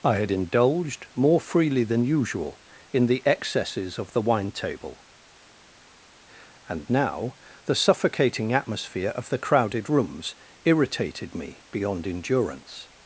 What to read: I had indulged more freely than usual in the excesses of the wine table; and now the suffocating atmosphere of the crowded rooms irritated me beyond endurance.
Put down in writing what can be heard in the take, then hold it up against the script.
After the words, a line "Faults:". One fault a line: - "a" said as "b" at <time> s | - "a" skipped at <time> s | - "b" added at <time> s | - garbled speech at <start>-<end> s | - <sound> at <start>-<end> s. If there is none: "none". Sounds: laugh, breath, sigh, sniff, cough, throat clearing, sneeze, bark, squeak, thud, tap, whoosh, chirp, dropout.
I had indulged more freely than usual in the excesses of the wine table; and now the suffocating atmosphere of the crowded rooms irritated me beyond endurance.
Faults:
none